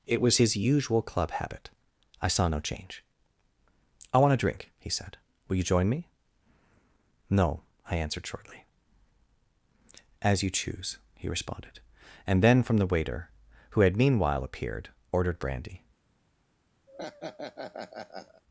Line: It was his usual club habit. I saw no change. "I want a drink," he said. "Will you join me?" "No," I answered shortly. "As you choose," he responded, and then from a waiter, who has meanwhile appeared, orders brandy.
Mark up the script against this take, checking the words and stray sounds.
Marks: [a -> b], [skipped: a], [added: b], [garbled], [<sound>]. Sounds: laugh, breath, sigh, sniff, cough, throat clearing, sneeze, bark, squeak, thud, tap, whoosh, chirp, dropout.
It was his usual club habit. I saw no change. "I want a drink," he said. "Will you join me?" "No," I answered shortly. "As you choose," he responded, and then from [a -> the] waiter, who [has -> had] meanwhile appeared, [orders -> ordered] brandy. [laugh]